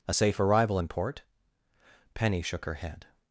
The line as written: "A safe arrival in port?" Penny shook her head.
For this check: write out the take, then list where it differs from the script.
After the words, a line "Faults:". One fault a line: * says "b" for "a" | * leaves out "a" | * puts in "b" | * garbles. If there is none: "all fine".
"A safe arrival in port?" Penny shook her head.
Faults:
all fine